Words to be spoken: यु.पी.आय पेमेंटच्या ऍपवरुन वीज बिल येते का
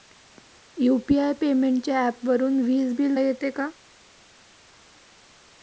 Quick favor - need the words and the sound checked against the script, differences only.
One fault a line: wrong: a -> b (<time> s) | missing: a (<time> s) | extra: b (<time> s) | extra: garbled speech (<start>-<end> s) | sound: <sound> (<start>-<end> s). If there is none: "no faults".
no faults